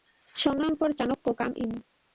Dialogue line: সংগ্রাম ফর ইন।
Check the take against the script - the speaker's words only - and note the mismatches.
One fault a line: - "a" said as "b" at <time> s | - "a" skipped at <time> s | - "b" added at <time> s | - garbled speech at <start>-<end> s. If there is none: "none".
- "চাণক্য কাম" added at 1.0 s